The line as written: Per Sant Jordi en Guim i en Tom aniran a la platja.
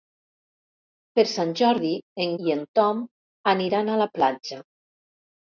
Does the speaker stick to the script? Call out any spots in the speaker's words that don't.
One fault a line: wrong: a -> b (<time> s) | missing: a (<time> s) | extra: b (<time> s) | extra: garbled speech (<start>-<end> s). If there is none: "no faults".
missing: Guim (2.3 s)